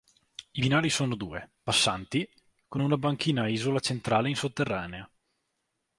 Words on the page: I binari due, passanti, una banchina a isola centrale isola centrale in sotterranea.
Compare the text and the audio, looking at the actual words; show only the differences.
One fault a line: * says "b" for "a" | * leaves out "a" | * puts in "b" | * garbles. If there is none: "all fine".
* puts in "sono"
* puts in "con"
* leaves out "isola centrale"